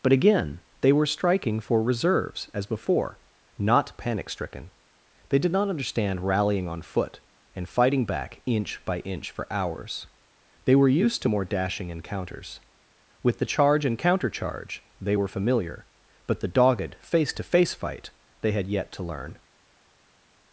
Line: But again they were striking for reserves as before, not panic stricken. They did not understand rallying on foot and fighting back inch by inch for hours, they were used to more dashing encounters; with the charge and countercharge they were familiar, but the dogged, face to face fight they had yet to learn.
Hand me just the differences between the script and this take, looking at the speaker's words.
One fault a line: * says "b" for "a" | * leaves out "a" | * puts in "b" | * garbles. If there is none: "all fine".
all fine